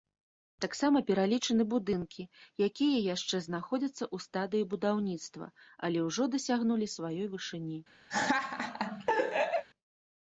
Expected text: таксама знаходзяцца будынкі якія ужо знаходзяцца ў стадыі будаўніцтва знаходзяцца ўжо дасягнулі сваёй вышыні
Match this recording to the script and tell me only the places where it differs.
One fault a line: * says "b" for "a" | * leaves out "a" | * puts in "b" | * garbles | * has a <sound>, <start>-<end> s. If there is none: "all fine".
* says "пералічаны" for "знаходзяцца"
* says "яшчэ" for "ужо"
* says "але" for "знаходзяцца"
* has a laugh, 8.1-9.6 s